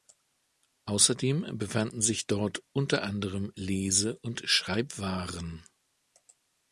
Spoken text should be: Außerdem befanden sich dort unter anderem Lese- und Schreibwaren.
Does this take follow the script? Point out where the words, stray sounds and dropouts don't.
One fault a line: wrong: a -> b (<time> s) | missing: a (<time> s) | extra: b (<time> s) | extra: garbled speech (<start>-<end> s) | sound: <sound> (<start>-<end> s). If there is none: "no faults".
no faults